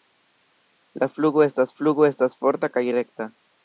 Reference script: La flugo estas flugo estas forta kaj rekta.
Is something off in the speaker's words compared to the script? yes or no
no